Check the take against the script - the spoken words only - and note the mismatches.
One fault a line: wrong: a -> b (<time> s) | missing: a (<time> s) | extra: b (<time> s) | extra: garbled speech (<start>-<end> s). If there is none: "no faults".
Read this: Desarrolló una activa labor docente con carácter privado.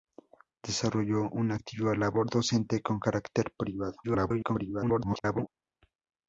extra: garbled speech (4.0-5.5 s)